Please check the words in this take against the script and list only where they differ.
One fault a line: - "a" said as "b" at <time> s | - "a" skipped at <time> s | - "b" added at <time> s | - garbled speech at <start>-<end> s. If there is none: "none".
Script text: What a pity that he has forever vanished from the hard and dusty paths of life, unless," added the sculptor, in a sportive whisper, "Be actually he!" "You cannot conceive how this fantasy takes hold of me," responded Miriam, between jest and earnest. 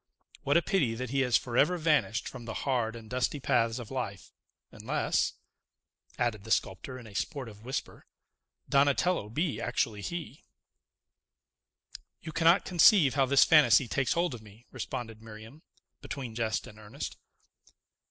- "Donatello" added at 8.7 s